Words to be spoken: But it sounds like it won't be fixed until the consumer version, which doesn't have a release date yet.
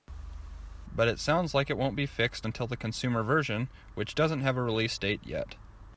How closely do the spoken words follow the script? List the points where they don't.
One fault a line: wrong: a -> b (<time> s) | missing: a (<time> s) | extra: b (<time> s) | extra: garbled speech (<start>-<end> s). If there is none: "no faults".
no faults